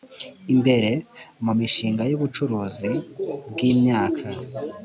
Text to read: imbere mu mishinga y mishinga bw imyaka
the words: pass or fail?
fail